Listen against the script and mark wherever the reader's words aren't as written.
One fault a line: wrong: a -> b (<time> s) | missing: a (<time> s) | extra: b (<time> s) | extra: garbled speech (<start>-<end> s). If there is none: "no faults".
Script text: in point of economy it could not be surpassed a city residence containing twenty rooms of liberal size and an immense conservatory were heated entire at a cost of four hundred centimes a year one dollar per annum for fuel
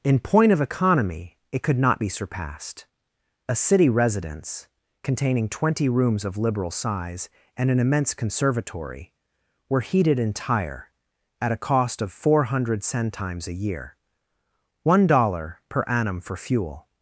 no faults